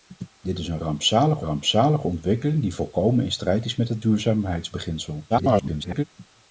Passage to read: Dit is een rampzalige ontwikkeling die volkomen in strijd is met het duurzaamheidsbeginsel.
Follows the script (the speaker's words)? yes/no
no